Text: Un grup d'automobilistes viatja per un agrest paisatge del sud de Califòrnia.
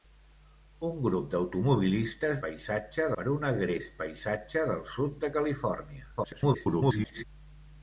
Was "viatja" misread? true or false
true